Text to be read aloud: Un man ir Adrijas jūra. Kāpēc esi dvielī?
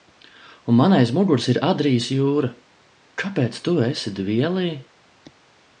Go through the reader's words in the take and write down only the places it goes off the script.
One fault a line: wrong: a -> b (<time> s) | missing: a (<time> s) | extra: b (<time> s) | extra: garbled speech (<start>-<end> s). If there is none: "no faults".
extra: aiz muguras (1.0 s)
extra: tu (3.7 s)